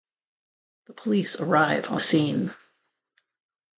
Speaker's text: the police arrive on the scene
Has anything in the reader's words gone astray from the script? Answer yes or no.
yes